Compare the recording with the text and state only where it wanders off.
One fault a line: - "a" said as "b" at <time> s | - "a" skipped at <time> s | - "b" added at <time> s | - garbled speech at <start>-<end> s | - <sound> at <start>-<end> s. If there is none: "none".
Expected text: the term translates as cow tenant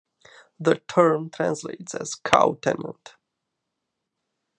none